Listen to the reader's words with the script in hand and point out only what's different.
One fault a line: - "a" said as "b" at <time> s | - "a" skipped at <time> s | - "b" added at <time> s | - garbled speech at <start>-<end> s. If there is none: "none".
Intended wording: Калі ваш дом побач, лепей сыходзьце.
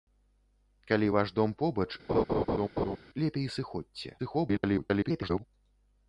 - garbled speech at 4.2-5.4 s